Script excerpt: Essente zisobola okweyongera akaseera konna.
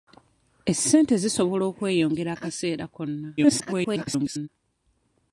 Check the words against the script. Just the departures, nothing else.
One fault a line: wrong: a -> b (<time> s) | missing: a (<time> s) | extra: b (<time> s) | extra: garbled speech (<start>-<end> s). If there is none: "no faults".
extra: garbled speech (3.4-4.5 s)